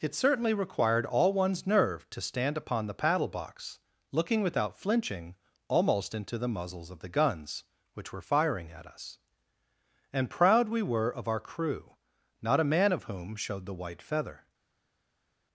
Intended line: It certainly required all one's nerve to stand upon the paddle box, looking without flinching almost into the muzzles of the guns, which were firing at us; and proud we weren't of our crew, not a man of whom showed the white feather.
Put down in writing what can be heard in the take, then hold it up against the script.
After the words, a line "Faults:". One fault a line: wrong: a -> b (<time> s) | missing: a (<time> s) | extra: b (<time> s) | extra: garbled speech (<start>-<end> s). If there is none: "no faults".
It certainly required all one's nerve to stand upon the paddle box, looking without flinching almost into the muzzles of the guns, which were firing at us; and proud we were of our crew, not a man of whom showed the white feather.
Faults:
wrong: weren't -> were (10.8 s)